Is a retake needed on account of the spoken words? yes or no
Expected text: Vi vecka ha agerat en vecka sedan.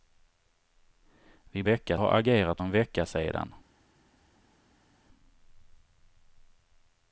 no